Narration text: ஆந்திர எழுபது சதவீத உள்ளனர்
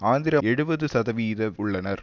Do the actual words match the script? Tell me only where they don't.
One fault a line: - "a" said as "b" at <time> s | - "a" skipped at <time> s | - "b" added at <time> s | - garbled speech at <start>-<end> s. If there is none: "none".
none